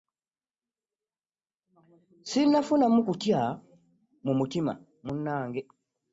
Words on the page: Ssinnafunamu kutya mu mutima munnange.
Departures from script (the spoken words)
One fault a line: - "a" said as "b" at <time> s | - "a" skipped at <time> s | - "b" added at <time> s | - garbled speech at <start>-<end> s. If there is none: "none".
none